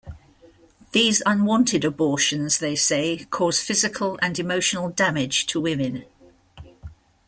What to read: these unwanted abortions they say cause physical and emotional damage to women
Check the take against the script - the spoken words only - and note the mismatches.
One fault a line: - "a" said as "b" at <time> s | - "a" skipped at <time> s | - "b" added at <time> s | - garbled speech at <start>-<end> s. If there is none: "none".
none